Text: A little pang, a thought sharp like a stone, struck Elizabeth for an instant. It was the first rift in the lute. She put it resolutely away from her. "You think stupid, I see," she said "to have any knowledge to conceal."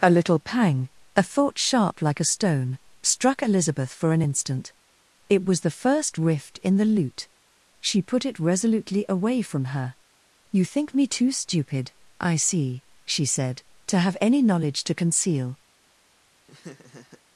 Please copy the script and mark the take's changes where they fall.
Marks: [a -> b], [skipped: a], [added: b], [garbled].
A little pang, a thought sharp like a stone, struck Elizabeth for an instant. It was the first rift in the lute. She put it resolutely away from her. "You think [added: me too] stupid, I see," she said "to have any knowledge to conceal."